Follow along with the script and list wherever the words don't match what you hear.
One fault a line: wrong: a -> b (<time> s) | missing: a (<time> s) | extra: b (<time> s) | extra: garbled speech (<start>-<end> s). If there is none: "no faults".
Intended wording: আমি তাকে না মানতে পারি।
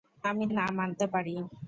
missing: তাকে (0.5 s)